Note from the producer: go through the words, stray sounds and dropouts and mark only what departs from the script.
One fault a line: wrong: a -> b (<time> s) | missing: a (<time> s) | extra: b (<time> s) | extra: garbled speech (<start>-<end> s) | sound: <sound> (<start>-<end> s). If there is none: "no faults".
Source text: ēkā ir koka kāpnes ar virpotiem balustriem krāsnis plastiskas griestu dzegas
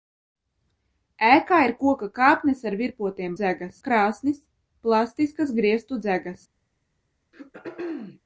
wrong: balustriem -> dzegas (3.3 s)
sound: throat clearing (7.3-8.2 s)